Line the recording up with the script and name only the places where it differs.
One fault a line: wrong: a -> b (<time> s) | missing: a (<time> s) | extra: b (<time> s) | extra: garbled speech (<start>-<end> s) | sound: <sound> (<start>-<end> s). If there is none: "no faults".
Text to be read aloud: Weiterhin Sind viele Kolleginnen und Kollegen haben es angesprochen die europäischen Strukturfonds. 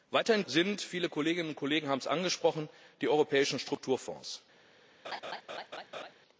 sound: laugh (5.0-6.1 s)